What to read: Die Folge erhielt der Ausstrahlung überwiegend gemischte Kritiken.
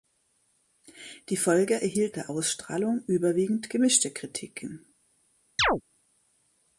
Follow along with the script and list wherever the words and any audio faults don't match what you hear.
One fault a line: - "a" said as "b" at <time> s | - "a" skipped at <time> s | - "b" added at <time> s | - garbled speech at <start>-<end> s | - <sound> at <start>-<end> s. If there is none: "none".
- chirp at 5.6-5.8 s